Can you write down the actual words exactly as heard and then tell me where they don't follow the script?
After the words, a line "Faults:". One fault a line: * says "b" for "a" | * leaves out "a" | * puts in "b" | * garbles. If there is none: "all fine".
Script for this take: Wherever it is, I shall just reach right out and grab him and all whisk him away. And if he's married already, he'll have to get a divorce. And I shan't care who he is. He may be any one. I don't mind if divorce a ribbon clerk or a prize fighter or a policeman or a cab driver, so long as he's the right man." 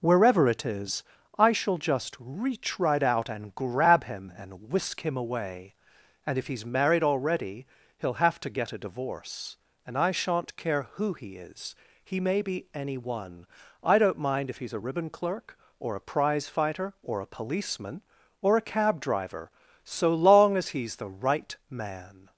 Wherever it is, I shall just reach right out and grab him and whisk him away. And if he's married already, he'll have to get a divorce. And I shan't care who he is. He may be any one. I don't mind if he's a ribbon clerk or a prize fighter or a policeman or a cab driver, so long as he's the right man."
Faults:
* leaves out "all"
* says "he's" for "divorce"